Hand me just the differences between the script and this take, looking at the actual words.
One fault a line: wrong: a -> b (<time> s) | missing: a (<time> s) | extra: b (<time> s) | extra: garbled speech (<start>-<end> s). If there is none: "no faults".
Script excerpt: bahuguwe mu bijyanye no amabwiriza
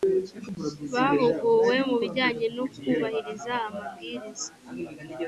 extra: kubahiriza (2.7 s)